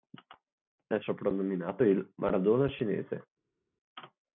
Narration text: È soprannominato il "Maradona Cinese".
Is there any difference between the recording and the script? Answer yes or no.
no